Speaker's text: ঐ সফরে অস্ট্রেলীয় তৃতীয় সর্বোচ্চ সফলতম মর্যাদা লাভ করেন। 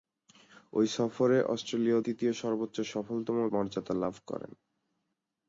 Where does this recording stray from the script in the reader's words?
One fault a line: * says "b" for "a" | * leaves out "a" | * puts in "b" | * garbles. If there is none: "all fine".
all fine